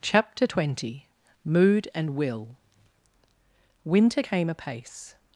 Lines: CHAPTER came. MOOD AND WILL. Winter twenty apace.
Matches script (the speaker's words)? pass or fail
fail